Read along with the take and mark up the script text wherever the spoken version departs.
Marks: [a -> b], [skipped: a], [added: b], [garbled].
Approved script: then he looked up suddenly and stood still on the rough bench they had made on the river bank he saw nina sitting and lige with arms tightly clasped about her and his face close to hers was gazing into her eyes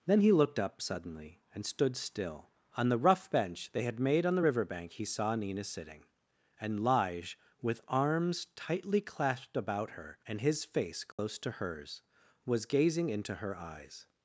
then he looked up suddenly and stood still on the rough bench they had made on the river bank he saw nina sitting and lige with arms tightly clasped about her and his face close to hers was gazing into her eyes